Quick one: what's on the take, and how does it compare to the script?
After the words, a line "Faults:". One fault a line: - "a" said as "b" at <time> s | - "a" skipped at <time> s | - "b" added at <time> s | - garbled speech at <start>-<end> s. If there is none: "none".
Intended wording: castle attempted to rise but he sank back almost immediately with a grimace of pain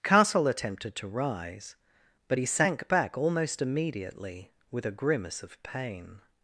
castle attempted to rise but he sank back almost immediately with a grimace of pain
Faults:
none